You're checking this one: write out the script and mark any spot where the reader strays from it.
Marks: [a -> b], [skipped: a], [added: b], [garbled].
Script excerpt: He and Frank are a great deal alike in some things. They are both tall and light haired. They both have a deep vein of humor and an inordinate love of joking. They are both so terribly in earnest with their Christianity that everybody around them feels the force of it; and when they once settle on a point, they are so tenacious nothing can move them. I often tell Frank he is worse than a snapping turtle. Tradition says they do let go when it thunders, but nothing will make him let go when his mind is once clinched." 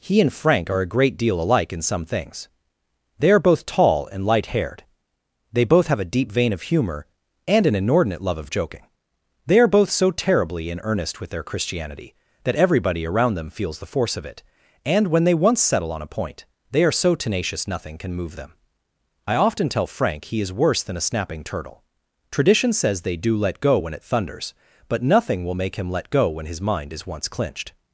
He and Frank are a great deal alike in some things. They are both tall and light haired. They both have a deep vein of humor and an inordinate love of joking. They are both so terribly in earnest with their Christianity that everybody around them feels the force of it; and when they once settle on a point, they are so tenacious nothing can move them. I often tell Frank he is worse than a snapping turtle. Tradition says they do let go when it thunders, but nothing will make him let go when his mind is once clinched."